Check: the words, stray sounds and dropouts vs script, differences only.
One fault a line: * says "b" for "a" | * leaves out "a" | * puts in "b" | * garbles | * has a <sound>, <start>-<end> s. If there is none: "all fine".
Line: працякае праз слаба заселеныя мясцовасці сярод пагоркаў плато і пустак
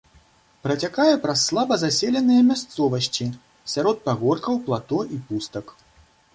all fine